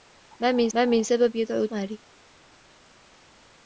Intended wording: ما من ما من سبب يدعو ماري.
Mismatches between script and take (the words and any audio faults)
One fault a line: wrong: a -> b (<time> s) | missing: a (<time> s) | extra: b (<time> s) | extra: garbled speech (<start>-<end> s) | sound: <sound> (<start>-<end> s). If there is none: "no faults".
no faults